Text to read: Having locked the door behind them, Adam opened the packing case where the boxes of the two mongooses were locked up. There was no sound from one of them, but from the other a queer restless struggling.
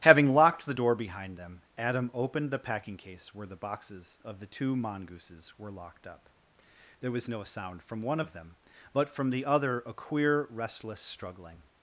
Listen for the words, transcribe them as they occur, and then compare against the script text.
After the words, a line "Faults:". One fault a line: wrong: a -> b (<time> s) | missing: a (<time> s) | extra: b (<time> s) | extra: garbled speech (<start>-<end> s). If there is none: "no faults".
Having locked the door behind them, Adam opened the packing case where the boxes of the two mongooses were locked up. There was no sound from one of them, but from the other a queer restless struggling.
Faults:
no faults